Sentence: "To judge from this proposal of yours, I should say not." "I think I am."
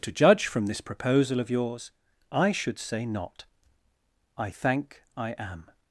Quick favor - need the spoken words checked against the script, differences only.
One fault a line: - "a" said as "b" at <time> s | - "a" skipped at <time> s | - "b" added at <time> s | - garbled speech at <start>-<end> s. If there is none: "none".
- "think" said as "thank" at 4.5 s